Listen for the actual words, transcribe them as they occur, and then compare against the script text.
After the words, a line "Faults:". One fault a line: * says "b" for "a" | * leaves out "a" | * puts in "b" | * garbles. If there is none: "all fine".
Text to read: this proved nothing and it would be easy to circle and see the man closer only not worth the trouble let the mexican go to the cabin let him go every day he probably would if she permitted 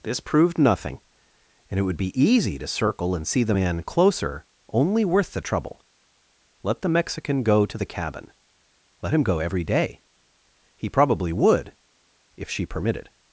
this proved nothing and it would be easy to circle and see the man closer only worth the trouble let the mexican go to the cabin let him go every day he probably would if she permitted
Faults:
* leaves out "not"